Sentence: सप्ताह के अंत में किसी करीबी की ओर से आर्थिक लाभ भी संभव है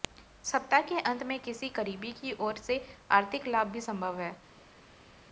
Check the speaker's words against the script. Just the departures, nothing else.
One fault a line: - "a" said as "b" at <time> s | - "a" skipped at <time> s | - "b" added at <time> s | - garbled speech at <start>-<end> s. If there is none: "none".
none